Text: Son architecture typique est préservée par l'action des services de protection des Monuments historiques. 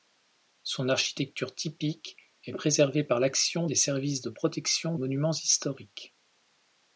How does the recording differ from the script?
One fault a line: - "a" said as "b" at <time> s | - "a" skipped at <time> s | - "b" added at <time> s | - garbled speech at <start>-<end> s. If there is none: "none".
- "des" skipped at 4.9 s